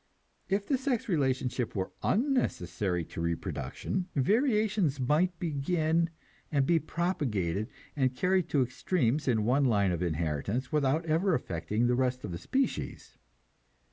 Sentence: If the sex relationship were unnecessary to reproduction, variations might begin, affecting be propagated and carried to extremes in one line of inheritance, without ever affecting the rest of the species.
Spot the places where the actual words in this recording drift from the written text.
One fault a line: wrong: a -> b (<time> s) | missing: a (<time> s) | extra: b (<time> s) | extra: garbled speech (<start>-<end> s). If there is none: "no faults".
wrong: affecting -> and (6.5 s)